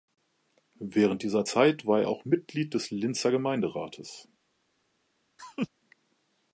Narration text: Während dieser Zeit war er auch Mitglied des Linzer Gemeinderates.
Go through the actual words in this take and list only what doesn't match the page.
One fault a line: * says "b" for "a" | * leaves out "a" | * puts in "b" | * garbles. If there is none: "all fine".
all fine